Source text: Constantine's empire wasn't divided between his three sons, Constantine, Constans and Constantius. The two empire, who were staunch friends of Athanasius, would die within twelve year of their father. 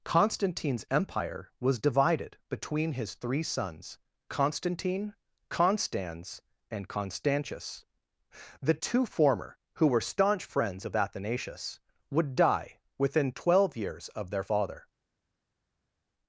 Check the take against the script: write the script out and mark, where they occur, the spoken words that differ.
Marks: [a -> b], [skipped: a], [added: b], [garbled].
Constantine's empire [wasn't -> was] divided between his three sons, Constantine, Constans and Constantius. The two [empire, -> former] who were staunch friends of Athanasius, would die within twelve [year -> years] of their father.